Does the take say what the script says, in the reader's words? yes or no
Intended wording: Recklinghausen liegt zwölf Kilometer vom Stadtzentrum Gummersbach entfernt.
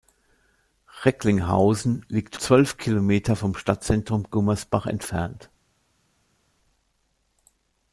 yes